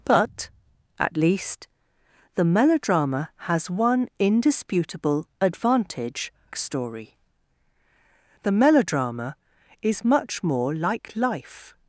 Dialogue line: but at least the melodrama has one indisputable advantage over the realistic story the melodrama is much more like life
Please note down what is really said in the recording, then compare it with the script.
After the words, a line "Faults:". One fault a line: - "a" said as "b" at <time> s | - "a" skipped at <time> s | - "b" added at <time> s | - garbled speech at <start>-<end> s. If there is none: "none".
but at least the melodrama has one indisputable advantage story the melodrama is much more like life
Faults:
- "over the realistic" skipped at 6.3 s